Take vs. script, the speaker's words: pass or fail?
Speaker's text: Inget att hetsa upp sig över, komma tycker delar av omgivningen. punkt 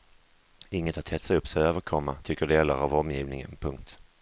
pass